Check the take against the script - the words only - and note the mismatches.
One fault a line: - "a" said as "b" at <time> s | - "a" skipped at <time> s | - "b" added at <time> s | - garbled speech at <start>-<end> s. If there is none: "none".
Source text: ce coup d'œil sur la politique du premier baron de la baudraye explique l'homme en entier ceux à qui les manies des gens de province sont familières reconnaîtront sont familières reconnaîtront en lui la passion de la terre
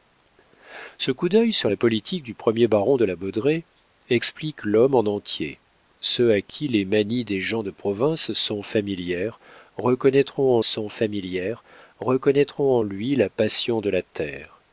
none